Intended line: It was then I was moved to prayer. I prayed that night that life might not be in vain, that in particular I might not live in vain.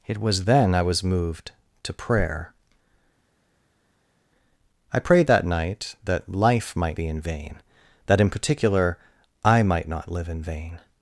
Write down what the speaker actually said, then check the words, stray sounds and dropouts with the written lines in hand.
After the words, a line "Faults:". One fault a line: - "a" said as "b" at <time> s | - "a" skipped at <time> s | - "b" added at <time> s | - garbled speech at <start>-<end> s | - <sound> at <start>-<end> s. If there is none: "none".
It was then I was moved to prayer. I prayed that night that life might be in vain, that in particular I might not live in vain.
Faults:
- "not" skipped at 7.0 s